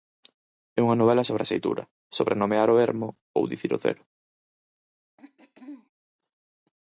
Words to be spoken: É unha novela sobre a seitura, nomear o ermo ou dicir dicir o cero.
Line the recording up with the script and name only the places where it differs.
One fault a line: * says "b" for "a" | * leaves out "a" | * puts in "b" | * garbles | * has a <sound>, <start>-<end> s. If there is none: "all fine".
* puts in "sobre"
* leaves out "dicir"
* has a throat clearing, 5.2-5.9 s